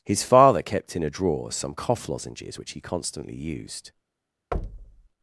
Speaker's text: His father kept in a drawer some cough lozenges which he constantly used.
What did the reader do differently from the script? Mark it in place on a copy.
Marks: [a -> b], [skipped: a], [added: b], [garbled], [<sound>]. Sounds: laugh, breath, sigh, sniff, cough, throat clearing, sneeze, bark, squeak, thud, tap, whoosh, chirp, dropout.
His father kept in a drawer some cough lozenges which he constantly used. [thud]